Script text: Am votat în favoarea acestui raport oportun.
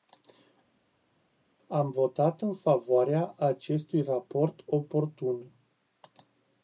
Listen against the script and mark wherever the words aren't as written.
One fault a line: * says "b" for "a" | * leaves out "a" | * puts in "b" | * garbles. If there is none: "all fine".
all fine